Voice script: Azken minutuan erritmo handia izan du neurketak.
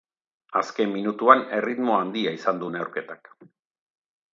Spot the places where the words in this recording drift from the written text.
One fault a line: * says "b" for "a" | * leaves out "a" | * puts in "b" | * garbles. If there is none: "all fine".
all fine